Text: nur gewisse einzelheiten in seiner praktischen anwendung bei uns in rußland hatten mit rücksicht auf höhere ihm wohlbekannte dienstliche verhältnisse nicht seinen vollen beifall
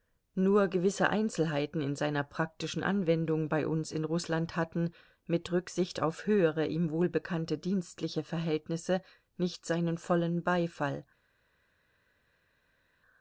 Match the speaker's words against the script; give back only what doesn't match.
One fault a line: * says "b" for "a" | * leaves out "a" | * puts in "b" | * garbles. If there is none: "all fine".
all fine